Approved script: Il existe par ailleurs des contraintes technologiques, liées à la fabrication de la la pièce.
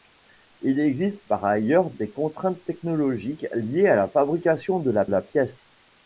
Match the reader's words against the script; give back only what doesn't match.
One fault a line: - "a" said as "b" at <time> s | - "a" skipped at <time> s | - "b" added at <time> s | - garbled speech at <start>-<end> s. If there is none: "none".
none